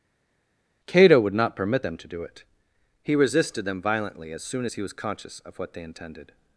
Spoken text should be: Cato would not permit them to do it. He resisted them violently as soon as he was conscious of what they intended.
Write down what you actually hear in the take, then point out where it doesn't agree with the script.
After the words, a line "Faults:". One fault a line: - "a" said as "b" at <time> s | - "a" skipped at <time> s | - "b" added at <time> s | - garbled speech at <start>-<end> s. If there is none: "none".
Cato would not permit them to do it. He resisted them violently as soon as he was conscious of what they intended.
Faults:
none